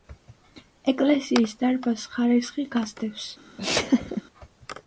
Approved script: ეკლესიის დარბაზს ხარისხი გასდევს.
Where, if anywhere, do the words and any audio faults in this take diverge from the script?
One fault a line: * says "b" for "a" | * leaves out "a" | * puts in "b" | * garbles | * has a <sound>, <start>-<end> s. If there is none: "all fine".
* has a laugh, 3.6-4.2 s